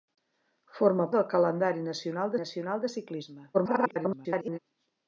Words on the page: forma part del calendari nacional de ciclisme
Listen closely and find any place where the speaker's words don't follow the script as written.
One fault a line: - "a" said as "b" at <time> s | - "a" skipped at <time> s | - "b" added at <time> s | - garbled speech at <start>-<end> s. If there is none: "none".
- "part" skipped at 1.1 s
- "nacional" added at 2.4 s
- garbled speech at 3.5-4.6 s